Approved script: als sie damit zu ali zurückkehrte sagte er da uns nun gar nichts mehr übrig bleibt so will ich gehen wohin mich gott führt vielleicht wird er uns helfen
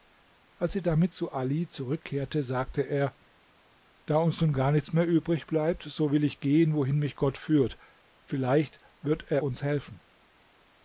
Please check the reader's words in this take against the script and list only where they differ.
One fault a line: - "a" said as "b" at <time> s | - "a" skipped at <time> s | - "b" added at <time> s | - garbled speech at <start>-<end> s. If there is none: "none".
none